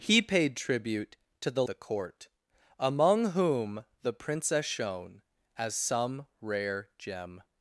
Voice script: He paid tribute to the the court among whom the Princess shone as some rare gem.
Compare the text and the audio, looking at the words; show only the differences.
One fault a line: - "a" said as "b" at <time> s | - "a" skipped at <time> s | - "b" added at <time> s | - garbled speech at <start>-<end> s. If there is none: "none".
none